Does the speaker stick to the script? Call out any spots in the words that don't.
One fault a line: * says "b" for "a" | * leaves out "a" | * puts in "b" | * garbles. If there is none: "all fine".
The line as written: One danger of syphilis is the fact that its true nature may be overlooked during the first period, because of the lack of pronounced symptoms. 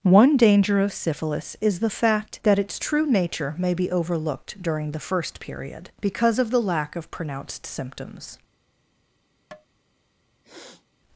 all fine